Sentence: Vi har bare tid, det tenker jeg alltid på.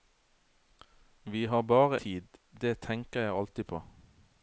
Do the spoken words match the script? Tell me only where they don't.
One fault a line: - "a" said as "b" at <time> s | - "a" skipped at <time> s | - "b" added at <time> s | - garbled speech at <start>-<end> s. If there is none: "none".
none